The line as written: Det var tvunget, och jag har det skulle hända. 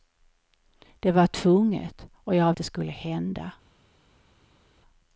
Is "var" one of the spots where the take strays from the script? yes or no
no